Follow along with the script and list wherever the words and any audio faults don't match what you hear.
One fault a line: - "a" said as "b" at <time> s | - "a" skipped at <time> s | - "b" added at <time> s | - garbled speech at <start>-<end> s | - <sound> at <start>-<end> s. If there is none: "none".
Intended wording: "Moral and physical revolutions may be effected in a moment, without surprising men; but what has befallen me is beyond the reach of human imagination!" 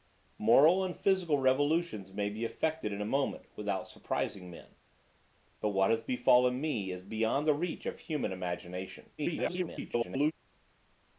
- garbled speech at 9.2-10.3 s